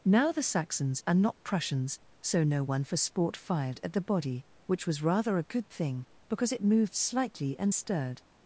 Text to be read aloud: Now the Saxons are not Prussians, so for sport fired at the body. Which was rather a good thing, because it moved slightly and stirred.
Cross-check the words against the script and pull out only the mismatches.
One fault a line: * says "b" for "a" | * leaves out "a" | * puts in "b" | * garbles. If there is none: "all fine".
* puts in "no one"